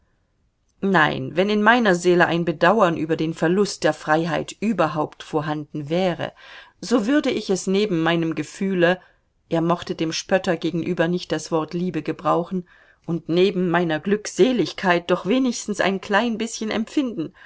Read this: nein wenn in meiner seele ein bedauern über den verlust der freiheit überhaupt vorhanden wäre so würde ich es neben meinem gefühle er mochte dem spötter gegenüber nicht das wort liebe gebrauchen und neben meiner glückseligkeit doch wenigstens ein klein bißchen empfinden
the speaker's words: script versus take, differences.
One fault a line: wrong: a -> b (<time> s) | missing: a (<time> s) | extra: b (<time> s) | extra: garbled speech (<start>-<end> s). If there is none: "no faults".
no faults